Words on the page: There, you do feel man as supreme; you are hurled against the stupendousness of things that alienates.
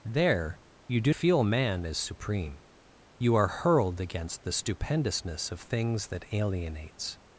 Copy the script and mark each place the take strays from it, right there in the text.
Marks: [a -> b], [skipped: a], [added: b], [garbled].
There, you do feel man as supreme; you are hurled against the stupendousness of things that alienates.